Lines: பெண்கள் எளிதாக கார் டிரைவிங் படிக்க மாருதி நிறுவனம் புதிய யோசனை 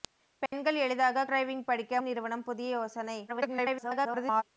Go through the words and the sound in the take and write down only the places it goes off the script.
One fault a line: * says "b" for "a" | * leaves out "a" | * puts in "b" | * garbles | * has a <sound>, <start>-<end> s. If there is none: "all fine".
* has a dropout, 0.5-0.5 s
* leaves out "கார்"
* leaves out "மாருதி"
* garbles